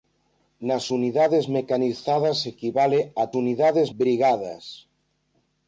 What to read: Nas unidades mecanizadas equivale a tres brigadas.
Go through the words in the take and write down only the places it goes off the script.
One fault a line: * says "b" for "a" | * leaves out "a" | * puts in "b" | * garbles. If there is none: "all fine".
* says "unidades" for "tres"